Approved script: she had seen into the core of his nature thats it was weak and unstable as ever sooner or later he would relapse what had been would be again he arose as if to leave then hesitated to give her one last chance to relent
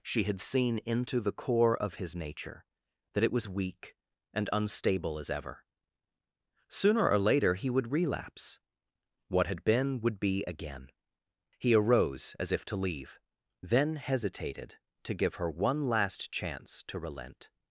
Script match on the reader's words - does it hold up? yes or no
no